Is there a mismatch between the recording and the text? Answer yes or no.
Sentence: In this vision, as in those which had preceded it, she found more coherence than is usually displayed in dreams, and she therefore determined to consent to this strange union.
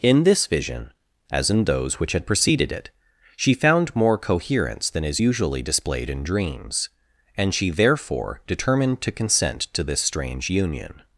no